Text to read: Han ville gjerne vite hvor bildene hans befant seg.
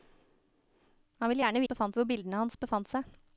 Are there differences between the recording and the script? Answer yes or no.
yes